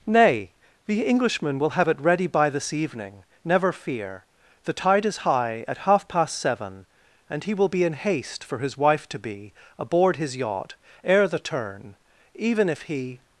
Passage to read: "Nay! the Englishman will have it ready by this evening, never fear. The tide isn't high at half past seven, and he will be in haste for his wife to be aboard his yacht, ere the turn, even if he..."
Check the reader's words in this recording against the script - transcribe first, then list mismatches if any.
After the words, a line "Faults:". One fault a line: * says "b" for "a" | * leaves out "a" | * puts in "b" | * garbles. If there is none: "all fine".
"Nay! the Englishman will have it ready by this evening, never fear. The tide is high at half past seven, and he will be in haste for his wife to be aboard his yacht, ere the turn, even if he..."
Faults:
* says "is" for "isn't"